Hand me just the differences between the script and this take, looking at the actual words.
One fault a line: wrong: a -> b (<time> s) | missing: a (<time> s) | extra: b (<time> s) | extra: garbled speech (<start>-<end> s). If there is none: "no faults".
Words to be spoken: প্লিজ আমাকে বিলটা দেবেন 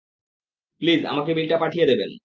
extra: পাঠিয়ে (1.6 s)